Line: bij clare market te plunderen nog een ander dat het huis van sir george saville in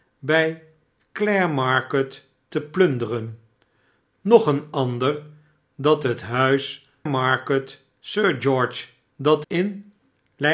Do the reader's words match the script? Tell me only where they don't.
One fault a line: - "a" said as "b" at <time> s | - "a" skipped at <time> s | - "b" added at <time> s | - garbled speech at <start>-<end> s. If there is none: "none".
- "van" said as "market" at 7.0 s
- "saville" said as "dat" at 9.2 s